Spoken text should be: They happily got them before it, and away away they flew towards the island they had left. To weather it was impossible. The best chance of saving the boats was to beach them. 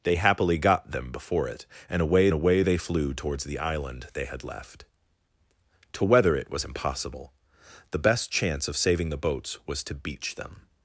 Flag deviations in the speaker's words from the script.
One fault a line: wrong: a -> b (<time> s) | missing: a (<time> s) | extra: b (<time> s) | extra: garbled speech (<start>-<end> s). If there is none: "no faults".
no faults